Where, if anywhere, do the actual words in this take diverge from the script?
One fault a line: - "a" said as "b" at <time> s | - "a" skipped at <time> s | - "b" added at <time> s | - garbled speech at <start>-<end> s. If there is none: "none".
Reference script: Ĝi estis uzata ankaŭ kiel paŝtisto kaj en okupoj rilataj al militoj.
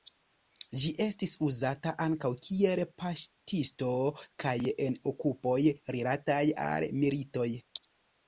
none